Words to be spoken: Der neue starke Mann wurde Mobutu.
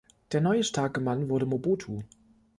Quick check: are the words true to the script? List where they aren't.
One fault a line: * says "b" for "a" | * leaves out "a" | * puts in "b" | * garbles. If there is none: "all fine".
all fine